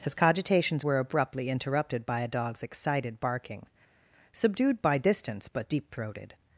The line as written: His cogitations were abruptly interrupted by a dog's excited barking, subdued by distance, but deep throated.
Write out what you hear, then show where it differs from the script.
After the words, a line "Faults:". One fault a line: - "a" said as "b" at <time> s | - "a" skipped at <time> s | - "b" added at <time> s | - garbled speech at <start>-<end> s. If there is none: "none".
His cogitations were abruptly interrupted by a dog's excited barking, subdued by distance, but deep throated.
Faults:
none